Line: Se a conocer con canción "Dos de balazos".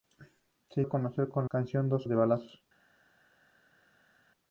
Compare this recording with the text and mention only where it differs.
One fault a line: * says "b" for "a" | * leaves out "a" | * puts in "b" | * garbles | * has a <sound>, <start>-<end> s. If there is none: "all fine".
all fine